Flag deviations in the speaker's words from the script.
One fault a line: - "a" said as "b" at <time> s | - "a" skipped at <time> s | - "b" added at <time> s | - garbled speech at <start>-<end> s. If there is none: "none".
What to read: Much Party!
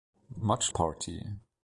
none